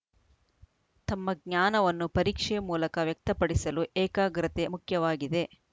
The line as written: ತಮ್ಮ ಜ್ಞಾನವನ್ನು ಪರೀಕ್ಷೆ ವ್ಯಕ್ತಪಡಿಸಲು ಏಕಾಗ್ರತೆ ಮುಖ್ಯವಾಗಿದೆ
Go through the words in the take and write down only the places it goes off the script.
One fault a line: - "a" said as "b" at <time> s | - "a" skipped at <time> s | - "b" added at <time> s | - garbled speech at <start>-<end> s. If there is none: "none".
- "ಮೂಲಕ" added at 2.7 s